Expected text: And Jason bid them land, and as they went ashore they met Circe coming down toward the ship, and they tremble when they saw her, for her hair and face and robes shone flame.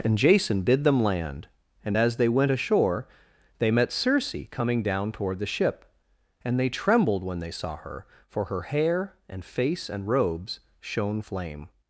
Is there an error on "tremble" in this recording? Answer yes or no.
yes